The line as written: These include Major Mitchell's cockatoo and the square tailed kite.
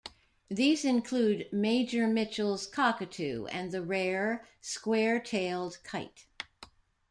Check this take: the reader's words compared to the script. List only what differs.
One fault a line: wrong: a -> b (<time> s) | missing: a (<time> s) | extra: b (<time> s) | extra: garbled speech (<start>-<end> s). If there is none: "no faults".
extra: rare (3.8 s)